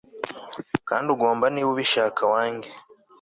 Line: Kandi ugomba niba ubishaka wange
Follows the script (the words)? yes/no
yes